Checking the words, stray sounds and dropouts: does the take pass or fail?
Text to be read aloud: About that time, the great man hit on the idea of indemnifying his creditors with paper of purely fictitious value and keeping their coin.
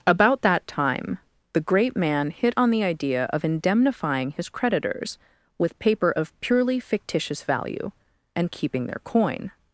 pass